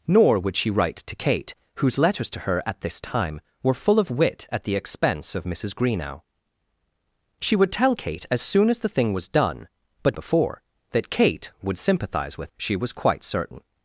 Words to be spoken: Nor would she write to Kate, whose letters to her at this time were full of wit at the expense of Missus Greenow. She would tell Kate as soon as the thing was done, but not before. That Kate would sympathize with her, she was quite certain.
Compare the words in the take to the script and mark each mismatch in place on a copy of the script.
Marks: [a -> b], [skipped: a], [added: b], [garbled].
Nor would she write to Kate, whose letters to her at this time were full of wit at the expense of Missus Greenow. She would tell Kate as soon as the thing was done, but [skipped: not] before. That Kate would sympathize with [skipped: her,] she was quite certain.